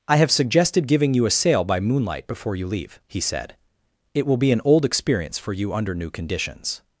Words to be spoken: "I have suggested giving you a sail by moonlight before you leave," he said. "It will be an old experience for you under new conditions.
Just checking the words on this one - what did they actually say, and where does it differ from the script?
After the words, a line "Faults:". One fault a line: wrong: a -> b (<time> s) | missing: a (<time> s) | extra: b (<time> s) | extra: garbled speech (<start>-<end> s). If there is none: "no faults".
"I have suggested giving you a sail by moonlight before you leave," he said. "It will be an old experience for you under new conditions.
Faults:
no faults